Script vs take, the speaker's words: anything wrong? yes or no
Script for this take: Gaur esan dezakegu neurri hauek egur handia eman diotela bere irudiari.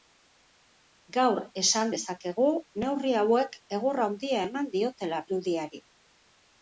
yes